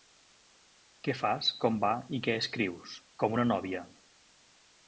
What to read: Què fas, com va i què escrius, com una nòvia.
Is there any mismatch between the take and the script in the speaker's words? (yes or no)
no